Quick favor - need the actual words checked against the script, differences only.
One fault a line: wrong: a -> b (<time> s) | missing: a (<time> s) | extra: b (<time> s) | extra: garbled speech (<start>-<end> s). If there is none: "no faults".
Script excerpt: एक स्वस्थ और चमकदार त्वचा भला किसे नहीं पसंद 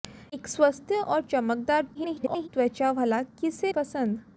extra: garbled speech (1.9-2.5 s)
missing: नहीं (3.7 s)